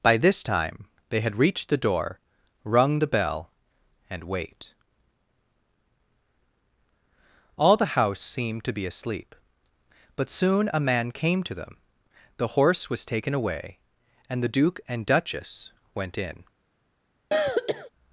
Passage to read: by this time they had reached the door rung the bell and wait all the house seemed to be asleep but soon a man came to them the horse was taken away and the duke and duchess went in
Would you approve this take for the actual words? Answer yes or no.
yes